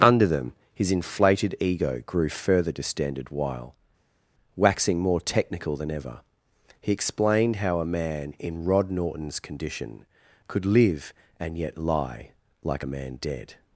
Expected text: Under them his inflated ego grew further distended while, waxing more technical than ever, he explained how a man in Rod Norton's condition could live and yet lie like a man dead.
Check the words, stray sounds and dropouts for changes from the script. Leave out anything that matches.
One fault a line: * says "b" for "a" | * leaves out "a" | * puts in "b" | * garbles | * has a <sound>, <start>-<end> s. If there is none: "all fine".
all fine